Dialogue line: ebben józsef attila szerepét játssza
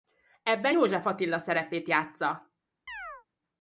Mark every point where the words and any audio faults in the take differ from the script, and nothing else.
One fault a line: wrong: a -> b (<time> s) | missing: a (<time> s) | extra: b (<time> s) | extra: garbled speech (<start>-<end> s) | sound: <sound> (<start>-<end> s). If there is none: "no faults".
sound: chirp (2.9-3.3 s)